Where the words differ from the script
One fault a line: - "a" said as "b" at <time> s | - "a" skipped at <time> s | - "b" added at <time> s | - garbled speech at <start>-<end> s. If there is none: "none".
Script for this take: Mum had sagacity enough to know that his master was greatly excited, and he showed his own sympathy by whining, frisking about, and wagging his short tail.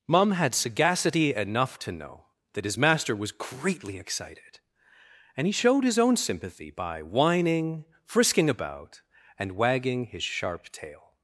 - "short" said as "sharp" at 10.2 s